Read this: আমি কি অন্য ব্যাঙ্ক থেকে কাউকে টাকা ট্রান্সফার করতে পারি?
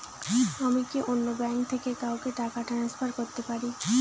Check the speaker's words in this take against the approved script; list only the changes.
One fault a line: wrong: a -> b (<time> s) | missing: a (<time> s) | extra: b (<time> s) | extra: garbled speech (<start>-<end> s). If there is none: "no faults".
no faults